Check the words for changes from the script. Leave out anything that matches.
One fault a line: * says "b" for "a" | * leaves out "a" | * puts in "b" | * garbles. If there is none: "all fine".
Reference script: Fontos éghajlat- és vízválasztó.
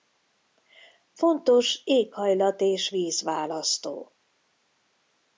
all fine